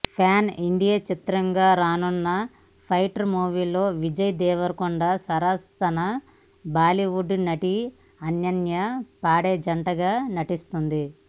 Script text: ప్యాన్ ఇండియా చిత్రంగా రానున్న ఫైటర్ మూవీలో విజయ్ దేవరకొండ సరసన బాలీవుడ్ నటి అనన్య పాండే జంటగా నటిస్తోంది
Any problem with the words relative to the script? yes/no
no